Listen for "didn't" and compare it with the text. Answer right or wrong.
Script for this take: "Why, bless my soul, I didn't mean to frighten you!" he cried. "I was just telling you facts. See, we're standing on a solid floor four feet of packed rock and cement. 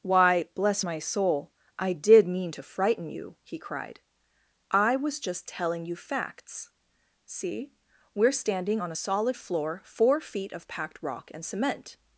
wrong